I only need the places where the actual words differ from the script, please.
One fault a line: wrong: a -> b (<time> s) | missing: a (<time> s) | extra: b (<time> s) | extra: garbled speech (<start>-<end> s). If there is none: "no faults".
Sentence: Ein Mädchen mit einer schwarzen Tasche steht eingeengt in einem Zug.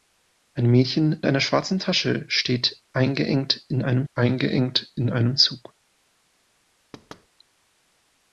missing: mit (1.2 s)
extra: eingeengt in einem (4.1 s)